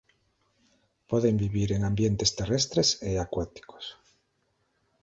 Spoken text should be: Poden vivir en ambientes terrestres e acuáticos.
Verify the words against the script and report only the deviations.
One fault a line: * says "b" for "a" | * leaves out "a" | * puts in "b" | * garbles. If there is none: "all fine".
all fine